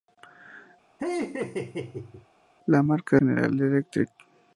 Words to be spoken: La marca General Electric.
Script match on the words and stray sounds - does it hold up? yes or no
no